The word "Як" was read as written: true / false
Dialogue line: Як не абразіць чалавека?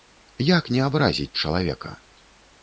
true